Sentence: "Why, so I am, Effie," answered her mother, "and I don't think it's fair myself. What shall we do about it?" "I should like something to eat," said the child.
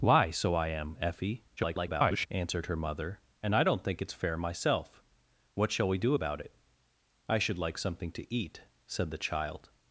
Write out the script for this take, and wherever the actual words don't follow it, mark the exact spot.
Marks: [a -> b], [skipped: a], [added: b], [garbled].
"Why, so I am, Effie," [garbled] answered her mother, "and I don't think it's fair myself. What shall we do about it?" "I should like something to eat," said the child.